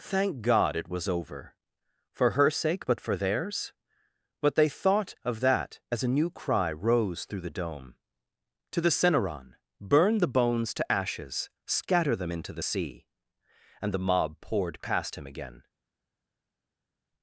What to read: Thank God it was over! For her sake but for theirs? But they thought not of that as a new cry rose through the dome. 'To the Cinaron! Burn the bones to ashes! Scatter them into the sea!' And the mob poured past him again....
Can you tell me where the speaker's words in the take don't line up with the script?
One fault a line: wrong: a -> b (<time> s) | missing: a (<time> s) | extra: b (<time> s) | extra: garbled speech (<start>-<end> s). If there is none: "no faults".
missing: not (5.1 s)